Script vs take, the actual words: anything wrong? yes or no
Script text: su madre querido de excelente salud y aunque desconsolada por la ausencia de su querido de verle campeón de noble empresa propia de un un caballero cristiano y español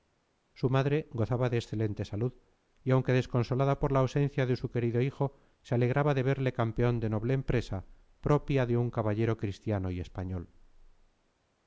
yes